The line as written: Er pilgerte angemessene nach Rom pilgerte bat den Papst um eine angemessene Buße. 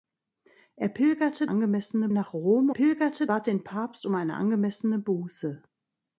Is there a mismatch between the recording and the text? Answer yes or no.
no